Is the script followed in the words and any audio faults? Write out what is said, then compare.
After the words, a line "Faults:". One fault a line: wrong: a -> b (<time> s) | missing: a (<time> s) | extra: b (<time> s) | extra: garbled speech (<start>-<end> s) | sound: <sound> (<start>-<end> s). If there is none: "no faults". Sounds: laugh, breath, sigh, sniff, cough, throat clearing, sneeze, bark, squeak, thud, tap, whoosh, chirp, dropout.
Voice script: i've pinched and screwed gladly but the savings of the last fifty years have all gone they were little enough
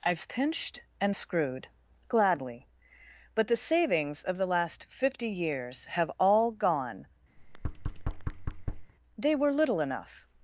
i've pinched and screwed gladly but the savings of the last fifty years have all gone they were little enough
Faults:
sound: thud (7.4-8.9 s)